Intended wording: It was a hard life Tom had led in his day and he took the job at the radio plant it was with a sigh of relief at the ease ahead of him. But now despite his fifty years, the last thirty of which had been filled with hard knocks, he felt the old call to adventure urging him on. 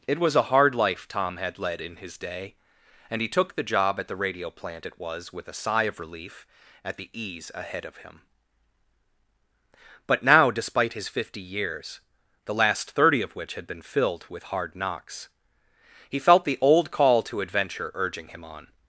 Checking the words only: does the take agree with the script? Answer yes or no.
yes